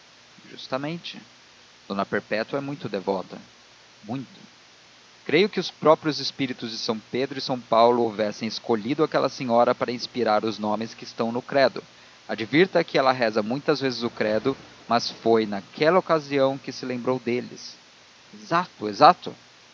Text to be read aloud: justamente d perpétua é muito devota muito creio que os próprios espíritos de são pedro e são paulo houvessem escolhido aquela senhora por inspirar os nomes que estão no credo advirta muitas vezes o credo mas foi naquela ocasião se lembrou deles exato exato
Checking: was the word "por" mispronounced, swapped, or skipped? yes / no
yes